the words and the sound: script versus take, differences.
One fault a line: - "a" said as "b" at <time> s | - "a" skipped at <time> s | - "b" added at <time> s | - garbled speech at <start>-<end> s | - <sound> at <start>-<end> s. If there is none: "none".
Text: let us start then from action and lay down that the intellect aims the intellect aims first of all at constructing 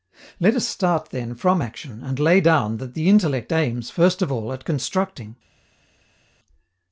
- "the intellect aims" skipped at 3.9 s